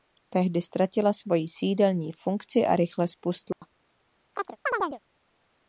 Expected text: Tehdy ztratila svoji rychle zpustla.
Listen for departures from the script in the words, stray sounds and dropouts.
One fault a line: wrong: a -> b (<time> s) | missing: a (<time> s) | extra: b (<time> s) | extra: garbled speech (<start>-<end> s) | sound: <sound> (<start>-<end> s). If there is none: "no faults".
extra: sídelní funkci a (1.5 s)
sound: dropout (3.5-3.6 s)
sound: chirp (4.3-5.0 s)